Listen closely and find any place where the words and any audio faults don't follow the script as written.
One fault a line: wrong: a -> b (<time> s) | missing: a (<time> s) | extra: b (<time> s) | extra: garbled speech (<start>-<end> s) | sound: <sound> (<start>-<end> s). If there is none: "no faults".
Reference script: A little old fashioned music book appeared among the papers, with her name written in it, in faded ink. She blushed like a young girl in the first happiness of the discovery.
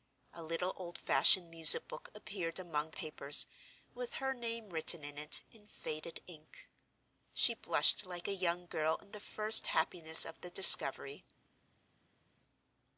no faults